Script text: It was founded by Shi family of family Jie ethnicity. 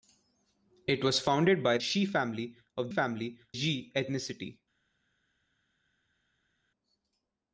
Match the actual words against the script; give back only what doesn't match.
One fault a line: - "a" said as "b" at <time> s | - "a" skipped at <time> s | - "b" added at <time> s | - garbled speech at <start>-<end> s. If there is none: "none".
none